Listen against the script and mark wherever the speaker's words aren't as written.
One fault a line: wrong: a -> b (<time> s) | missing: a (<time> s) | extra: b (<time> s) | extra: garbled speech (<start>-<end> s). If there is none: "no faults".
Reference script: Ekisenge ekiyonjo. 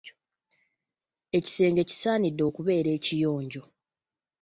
extra: kisaanidde okubeera (1.9 s)